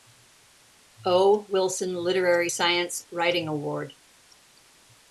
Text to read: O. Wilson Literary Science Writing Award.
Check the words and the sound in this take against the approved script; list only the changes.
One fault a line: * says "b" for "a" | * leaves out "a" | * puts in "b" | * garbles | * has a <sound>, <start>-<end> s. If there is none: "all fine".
all fine